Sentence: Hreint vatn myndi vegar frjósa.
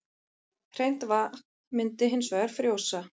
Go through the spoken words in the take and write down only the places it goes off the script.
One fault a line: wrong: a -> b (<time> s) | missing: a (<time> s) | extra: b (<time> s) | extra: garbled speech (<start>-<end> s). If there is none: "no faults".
extra: hins (2.1 s)